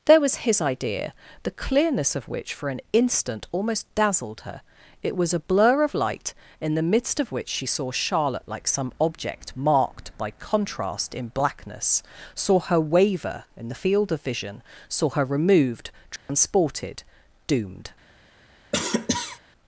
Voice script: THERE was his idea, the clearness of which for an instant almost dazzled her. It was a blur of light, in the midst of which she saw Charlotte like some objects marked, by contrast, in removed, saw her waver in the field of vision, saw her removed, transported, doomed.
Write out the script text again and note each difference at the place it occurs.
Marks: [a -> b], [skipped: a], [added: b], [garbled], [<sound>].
THERE was his idea, the clearness of which for an instant almost dazzled her. It was a blur of light, in the midst of which she saw Charlotte like some [objects -> object] marked, by contrast, in [removed, -> blackness] saw her waver in the field of vision, saw her removed, transported, [dropout] doomed. [cough]